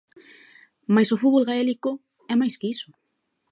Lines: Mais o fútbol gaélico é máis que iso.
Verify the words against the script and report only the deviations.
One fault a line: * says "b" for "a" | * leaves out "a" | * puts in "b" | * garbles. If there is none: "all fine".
all fine